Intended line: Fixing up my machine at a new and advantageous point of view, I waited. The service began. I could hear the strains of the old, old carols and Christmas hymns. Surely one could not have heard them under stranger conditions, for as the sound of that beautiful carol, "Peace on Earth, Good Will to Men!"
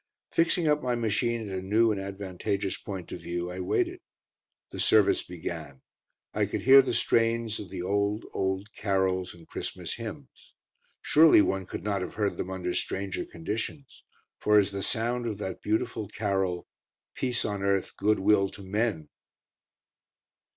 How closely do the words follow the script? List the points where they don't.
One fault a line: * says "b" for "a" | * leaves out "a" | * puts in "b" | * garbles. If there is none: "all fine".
all fine